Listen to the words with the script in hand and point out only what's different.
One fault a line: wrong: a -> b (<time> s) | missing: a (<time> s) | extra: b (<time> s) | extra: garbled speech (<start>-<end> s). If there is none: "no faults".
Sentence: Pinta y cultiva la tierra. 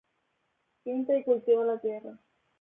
no faults